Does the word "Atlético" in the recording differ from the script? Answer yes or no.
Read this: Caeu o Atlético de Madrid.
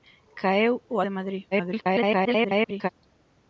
yes